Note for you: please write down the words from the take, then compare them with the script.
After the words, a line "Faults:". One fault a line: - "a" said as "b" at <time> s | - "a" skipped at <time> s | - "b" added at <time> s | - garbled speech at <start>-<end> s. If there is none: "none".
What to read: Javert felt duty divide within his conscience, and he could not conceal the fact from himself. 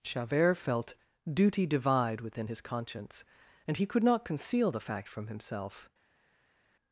Javert felt duty divide within his conscience, and he could not conceal the fact from himself.
Faults:
none